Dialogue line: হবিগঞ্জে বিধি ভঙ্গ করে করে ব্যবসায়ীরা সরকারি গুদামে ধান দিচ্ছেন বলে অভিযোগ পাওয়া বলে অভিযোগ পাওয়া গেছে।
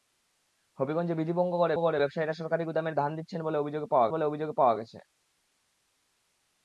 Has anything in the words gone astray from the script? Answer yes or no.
no